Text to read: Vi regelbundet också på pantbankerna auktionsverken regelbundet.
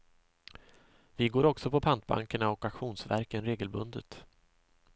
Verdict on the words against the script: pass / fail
fail